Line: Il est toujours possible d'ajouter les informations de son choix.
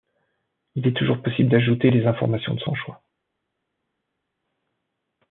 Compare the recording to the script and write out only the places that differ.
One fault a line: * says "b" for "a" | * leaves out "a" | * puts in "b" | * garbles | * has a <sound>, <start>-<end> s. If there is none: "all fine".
all fine